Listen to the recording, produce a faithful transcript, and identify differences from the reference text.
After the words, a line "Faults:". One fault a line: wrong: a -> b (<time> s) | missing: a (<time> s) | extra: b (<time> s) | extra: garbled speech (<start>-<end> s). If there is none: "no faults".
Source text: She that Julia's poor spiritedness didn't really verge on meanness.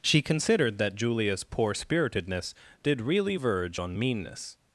She considered that Julia's poor spiritedness did really verge on meanness.
Faults:
extra: considered (0.2 s)
wrong: didn't -> did (2.8 s)